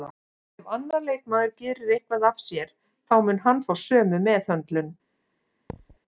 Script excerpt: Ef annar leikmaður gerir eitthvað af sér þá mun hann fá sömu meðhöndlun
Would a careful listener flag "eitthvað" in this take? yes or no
no